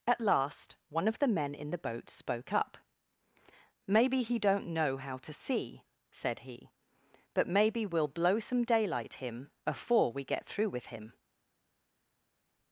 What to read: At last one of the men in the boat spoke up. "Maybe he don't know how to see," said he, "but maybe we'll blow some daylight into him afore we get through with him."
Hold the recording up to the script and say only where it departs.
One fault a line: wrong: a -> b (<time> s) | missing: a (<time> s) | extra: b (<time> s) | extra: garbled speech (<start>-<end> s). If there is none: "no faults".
missing: into (9.2 s)